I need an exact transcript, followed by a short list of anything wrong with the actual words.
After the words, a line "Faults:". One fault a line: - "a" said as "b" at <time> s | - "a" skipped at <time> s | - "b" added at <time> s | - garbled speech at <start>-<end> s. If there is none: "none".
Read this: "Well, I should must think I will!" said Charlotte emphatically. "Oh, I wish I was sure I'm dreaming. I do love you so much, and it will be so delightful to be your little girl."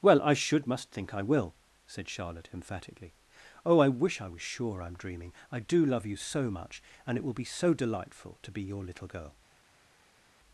"Well, I should must think I will!" said Charlotte emphatically. "Oh, I wish I was sure I'm dreaming. I do love you so much, and it will be so delightful to be your little girl."
Faults:
none